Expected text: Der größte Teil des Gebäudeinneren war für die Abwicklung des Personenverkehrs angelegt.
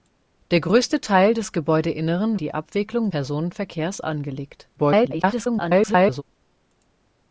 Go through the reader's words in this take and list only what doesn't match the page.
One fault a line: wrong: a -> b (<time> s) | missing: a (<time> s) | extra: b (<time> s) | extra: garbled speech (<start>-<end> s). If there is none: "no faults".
missing: war für (2.4 s)
missing: des (3.1 s)
extra: garbled speech (4.8-6.2 s)